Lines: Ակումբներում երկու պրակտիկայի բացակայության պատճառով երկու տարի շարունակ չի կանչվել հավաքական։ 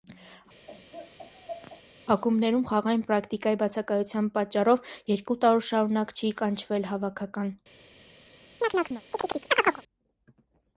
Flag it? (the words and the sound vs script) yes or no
yes